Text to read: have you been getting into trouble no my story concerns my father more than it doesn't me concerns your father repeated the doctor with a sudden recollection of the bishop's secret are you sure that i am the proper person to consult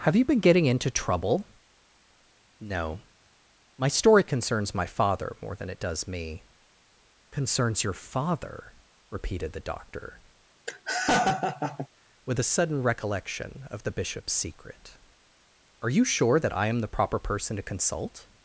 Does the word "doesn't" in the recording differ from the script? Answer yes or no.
yes